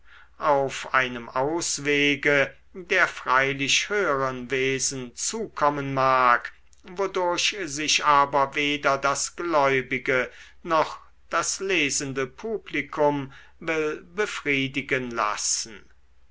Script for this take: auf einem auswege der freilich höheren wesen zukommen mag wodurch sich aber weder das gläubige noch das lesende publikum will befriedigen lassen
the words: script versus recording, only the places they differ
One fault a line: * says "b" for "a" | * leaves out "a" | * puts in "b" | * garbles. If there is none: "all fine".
all fine